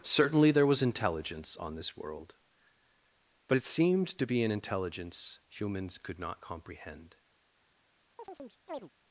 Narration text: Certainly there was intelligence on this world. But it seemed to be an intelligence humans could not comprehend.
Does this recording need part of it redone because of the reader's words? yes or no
no